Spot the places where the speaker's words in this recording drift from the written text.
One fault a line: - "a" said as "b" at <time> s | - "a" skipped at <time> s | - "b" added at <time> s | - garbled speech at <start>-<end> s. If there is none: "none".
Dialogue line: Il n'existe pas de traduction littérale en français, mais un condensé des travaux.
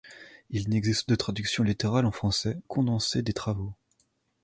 - "pas" skipped at 1.1 s
- "mais un" skipped at 2.6 s